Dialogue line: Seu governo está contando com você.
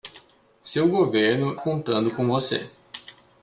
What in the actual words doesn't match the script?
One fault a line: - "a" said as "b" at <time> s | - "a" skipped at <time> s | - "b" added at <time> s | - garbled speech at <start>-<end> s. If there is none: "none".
- "está" skipped at 1.6 s